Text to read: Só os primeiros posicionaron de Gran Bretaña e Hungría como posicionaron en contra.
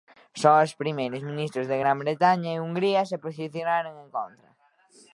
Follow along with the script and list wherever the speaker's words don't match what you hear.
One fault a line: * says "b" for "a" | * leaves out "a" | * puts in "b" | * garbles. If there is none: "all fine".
* says "ministros" for "posicionaron"
* says "se" for "como"